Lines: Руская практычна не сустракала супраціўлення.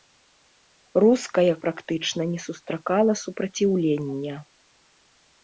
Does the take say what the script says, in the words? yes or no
yes